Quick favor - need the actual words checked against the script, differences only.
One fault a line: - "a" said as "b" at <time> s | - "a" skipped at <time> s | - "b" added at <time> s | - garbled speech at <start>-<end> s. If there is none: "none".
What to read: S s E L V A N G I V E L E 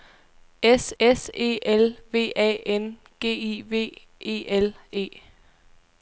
none